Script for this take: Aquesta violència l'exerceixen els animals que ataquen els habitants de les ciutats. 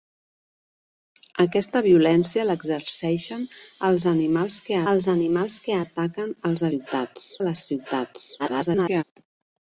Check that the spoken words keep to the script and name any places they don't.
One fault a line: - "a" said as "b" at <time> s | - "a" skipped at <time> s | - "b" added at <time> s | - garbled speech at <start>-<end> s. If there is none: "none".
- "els animals que" added at 4.9 s
- "habitants" said as "ciutats" at 6.7 s
- garbled speech at 8.4-9.0 s